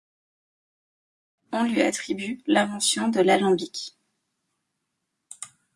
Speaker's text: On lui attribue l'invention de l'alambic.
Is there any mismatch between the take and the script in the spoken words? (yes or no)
no